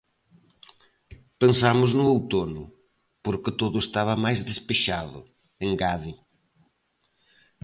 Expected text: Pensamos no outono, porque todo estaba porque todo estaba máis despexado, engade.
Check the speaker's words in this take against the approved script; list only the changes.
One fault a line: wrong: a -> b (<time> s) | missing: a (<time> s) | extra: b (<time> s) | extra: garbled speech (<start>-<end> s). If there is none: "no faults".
missing: porque todo estaba (4.2 s)